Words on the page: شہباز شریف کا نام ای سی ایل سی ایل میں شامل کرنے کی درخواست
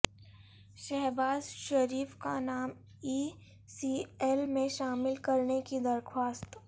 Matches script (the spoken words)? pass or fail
fail